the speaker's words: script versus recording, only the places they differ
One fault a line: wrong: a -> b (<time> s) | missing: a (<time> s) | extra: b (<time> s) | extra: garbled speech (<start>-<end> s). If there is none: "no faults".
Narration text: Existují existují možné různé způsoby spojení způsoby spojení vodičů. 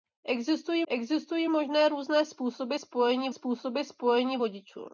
no faults